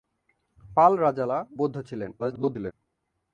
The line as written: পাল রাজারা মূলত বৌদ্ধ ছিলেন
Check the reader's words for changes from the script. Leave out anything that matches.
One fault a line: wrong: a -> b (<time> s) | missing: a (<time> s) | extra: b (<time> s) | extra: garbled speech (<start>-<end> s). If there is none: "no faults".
missing: মূলত (1.4 s)
extra: garbled speech (2.2-2.7 s)